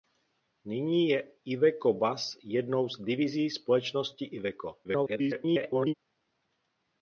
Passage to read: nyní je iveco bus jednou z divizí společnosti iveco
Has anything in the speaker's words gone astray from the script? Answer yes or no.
yes